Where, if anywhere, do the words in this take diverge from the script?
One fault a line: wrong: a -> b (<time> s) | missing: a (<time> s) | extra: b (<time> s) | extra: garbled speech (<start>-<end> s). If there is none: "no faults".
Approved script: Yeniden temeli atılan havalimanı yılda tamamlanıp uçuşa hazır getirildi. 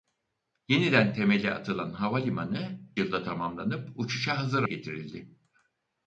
no faults